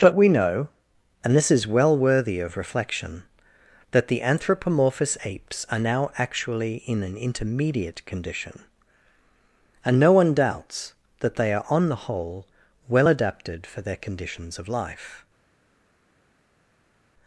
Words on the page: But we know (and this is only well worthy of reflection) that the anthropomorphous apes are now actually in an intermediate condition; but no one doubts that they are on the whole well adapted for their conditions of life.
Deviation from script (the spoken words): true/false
true